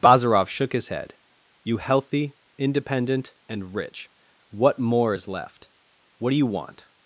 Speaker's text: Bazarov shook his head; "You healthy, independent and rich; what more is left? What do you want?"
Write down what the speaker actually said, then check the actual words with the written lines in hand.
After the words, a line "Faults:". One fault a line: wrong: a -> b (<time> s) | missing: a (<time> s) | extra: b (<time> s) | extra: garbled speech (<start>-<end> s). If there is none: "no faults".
Bazarov shook his head; "You healthy, independent and rich; what more is left? What do you want?"
Faults:
no faults